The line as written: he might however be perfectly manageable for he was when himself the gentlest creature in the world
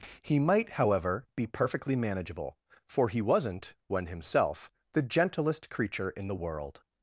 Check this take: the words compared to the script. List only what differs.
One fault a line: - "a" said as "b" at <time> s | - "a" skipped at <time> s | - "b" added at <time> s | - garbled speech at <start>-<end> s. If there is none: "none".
- "was" said as "wasn't" at 3.2 s